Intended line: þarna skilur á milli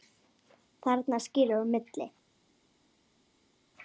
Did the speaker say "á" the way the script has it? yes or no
yes